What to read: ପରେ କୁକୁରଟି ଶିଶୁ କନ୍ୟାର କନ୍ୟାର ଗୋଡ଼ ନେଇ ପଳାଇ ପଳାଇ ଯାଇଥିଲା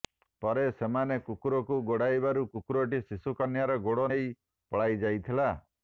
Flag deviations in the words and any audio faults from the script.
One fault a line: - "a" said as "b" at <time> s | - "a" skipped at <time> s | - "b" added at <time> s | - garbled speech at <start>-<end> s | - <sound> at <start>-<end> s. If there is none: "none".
- "ସେମାନେ କୁକୁରକୁ ଗୋଡ଼ାଇବାରୁ" added at 0.8 s
- "କନ୍ୟାର" skipped at 3.8 s
- "ପଳାଇ" skipped at 5.0 s